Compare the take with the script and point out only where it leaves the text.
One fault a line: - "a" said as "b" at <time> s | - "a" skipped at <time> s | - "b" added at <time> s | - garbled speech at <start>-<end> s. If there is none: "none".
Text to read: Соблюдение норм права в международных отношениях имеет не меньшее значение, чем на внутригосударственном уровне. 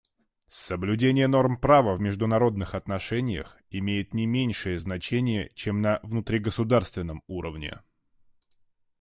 none